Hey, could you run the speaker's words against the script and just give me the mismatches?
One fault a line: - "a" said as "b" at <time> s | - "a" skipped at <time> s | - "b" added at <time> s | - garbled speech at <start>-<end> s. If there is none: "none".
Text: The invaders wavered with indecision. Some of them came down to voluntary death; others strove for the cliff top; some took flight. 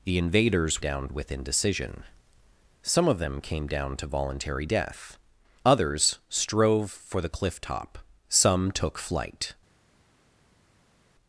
- "wavered" said as "down" at 0.8 s